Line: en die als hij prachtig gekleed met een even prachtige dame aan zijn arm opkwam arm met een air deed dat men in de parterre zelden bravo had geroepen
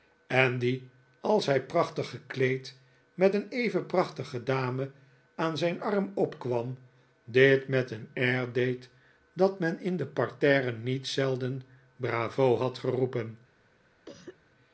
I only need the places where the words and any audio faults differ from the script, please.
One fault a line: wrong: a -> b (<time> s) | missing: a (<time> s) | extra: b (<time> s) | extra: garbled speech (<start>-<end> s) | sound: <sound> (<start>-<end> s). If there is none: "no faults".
wrong: arm -> dit (7.2 s)
extra: niet (10.7 s)
sound: cough (14.1-14.4 s)